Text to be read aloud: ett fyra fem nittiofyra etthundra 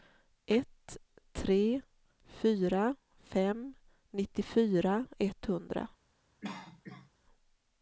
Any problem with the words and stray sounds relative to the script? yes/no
yes